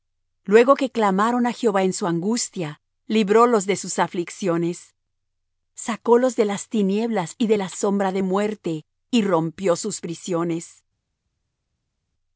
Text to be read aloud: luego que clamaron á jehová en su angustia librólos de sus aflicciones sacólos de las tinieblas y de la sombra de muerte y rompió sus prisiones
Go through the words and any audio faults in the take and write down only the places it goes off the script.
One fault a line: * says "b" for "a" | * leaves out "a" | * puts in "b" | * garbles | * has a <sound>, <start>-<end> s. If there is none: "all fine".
all fine